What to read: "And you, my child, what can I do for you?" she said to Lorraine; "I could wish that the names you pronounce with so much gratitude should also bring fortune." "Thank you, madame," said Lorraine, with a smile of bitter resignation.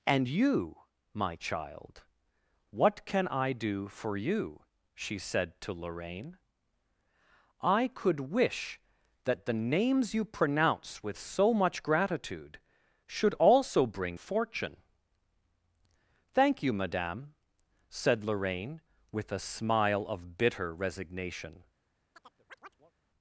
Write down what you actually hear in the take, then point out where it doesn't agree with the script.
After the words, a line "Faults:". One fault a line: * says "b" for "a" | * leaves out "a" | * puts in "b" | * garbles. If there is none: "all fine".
"And you, my child, what can I do for you?" she said to Lorraine; "I could wish that the names you pronounce with so much gratitude should also bring fortune." "Thank you, madame," said Lorraine, with a smile of bitter resignation.
Faults:
all fine